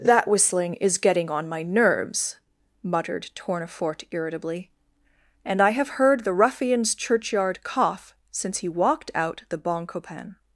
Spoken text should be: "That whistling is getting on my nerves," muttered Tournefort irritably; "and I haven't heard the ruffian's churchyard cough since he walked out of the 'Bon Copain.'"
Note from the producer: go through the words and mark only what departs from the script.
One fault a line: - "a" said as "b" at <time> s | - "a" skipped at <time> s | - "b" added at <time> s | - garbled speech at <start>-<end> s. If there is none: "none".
- "haven't" said as "have" at 5.7 s
- "of" skipped at 9.4 s